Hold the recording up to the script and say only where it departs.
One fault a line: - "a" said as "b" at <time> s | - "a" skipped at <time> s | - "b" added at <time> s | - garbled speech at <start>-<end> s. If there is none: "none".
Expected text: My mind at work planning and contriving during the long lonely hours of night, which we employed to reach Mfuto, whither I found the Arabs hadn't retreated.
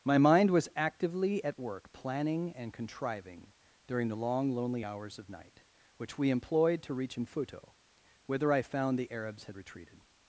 - "was actively" added at 0.5 s
- "hadn't" said as "had" at 9.5 s